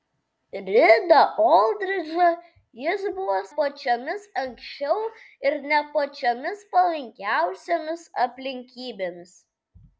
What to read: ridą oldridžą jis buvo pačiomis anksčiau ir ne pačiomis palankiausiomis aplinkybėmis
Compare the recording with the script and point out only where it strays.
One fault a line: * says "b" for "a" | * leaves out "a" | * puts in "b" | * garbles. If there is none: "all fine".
all fine